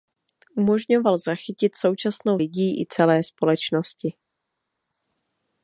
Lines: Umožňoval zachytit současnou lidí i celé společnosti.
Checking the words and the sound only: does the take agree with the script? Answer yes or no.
yes